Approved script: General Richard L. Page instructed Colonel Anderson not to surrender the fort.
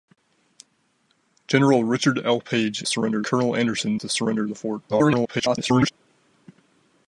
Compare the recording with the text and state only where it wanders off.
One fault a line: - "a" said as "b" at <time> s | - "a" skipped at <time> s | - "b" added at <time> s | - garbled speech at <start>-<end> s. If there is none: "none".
- "instructed" said as "surrender" at 2.8 s
- "not" skipped at 4.0 s
- garbled speech at 4.9-5.9 s